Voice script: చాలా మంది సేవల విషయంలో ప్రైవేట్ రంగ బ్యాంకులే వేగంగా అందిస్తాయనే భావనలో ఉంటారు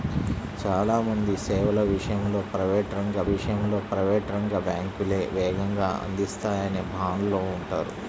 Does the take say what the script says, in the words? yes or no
no